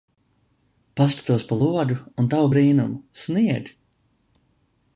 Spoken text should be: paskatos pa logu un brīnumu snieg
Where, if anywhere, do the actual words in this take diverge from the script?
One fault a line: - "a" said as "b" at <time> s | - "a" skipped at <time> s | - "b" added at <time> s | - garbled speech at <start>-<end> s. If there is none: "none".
- "tavu" added at 2.3 s